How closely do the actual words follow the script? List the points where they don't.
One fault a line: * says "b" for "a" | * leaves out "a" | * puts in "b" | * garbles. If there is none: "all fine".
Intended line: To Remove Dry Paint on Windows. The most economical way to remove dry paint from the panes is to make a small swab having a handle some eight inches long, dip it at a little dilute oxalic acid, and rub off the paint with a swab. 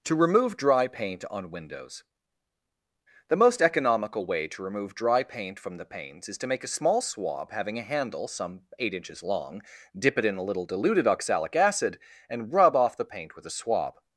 * says "in" for "at"
* says "diluted" for "dilute"